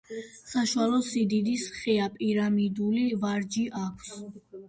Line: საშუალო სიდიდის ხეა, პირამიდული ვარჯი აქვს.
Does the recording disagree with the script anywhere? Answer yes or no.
no